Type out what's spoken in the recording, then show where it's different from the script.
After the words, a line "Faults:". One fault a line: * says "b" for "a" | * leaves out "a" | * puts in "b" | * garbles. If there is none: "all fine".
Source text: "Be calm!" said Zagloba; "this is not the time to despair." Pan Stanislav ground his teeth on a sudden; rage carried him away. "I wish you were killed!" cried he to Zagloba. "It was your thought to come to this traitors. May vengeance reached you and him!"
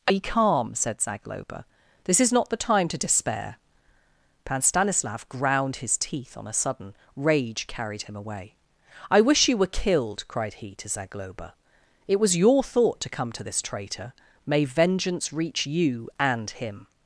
"Be calm!" said Zagloba; "this is not the time to despair." Pan Stanislav ground his teeth on a sudden; rage carried him away. "I wish you were killed!" cried he to Zagloba. "It was your thought to come to this traitor. May vengeance reach you and him!"
Faults:
* says "traitor" for "traitors"
* says "reach" for "reached"